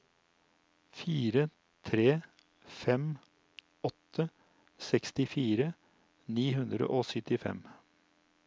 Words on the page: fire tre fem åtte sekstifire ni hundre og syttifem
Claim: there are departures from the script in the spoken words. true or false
false